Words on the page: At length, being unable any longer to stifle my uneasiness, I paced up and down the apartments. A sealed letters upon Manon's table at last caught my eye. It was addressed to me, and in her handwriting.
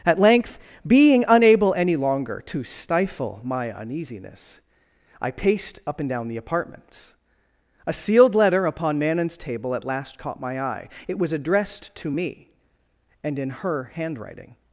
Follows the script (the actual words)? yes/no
no